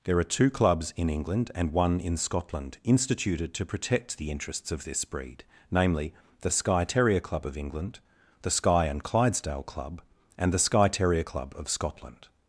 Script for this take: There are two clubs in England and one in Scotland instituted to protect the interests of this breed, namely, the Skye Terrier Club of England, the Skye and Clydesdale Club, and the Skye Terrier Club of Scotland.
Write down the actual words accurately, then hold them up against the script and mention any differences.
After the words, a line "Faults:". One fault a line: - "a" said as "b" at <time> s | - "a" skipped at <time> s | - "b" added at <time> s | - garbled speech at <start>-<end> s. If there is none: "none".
There are two clubs in England and one in Scotland instituted to protect the interests of this breed, namely, the Skye Terrier Club of England, the Skye and Clydesdale Club, and the Skye Terrier Club of Scotland.
Faults:
none